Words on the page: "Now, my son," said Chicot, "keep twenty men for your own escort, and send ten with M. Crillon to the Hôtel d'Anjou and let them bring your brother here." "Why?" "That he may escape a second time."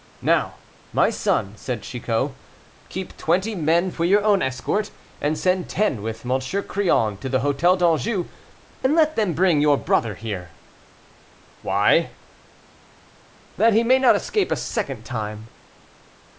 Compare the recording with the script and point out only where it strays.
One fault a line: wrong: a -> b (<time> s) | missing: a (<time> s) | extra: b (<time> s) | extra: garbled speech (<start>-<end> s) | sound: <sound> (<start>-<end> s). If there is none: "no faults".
extra: not (14.0 s)